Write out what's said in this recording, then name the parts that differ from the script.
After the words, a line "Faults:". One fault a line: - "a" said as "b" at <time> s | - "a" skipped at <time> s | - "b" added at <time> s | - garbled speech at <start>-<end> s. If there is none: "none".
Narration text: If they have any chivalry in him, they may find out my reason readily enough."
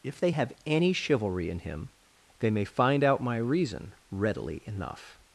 If they have any chivalry in him, they may find out my reason readily enough."
Faults:
none